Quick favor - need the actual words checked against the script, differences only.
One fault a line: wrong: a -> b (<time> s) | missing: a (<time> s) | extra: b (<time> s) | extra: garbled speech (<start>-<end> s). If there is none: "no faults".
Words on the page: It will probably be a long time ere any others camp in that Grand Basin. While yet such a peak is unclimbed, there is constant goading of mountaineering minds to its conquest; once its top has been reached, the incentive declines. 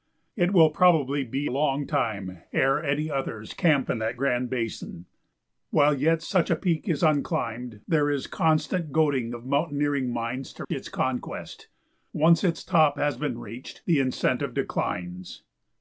missing: a (1.5 s)